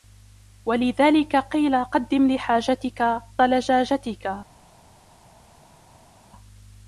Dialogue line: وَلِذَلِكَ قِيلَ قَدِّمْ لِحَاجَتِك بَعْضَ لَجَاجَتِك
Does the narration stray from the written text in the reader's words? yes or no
yes